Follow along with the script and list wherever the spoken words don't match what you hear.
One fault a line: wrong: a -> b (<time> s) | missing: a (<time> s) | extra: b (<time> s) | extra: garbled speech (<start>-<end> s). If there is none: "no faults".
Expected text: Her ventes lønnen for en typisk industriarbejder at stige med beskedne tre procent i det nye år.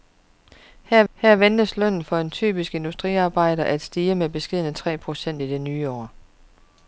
extra: her (1.1 s)